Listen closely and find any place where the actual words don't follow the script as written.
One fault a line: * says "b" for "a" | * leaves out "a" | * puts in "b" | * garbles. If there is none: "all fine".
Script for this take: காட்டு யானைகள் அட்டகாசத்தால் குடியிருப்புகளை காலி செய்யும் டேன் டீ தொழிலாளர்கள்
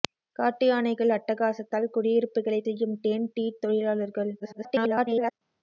* leaves out "காலி"
* garbles